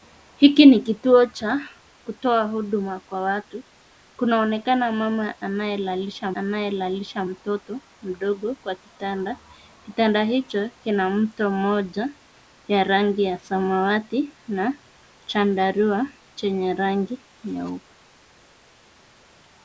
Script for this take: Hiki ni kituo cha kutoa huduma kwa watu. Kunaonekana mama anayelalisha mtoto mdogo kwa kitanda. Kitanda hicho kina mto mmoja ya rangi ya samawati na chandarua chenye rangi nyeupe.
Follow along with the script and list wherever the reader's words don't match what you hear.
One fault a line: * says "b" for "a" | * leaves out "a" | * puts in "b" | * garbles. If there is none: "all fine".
* puts in "anayelalisha"